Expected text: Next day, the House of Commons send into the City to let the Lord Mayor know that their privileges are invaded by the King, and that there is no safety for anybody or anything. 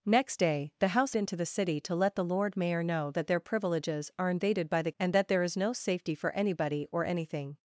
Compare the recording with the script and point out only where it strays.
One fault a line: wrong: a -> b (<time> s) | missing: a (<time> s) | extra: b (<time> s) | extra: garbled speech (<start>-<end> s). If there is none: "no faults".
missing: of Commons send (1.2 s)
missing: King (4.9 s)